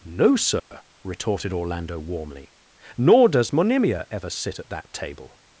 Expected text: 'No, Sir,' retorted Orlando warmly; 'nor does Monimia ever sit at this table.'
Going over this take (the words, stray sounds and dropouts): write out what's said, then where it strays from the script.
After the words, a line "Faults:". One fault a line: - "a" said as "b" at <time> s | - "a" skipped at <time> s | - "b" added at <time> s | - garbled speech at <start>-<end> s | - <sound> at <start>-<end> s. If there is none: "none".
'No, Sir,' retorted Orlando warmly; 'nor does Monimia ever sit at that table.'
Faults:
- dropout at 0.6-0.7 s
- "this" said as "that" at 4.7 s